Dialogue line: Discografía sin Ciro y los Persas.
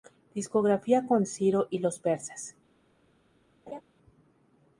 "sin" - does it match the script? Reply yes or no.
no